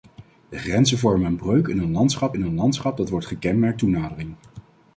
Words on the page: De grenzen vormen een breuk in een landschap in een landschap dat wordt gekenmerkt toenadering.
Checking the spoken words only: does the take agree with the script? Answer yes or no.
yes